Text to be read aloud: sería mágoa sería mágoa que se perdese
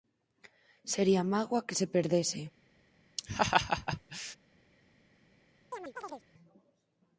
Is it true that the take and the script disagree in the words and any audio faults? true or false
true